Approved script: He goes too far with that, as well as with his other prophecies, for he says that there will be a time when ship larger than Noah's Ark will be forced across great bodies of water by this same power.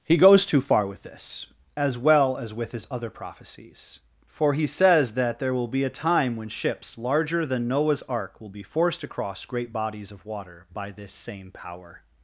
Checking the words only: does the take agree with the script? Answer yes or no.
no